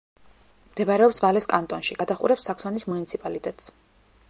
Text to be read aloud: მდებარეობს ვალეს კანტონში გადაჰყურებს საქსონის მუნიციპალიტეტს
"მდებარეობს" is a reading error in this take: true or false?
false